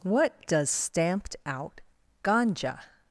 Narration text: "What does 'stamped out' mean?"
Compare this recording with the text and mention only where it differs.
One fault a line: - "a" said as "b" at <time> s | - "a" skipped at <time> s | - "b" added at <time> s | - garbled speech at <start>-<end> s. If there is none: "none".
- "mean" said as "ganja" at 2.2 s